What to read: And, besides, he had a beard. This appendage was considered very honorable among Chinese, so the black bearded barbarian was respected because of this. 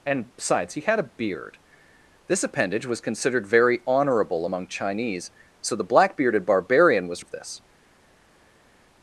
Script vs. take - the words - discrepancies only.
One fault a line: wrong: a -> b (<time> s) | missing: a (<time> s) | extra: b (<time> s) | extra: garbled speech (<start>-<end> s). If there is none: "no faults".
missing: respected because (7.2 s)